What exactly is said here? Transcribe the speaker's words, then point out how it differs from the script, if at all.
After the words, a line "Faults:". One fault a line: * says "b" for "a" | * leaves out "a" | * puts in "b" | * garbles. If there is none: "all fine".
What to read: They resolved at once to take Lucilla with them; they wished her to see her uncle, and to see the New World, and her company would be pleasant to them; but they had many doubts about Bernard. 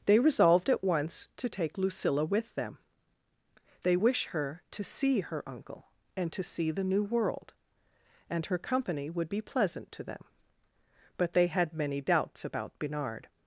They resolved at once to take Lucilla with them; they wish her to see her uncle, and to see the New World, and her company would be pleasant to them; but they had many doubts about Bernard.
Faults:
* says "wish" for "wished"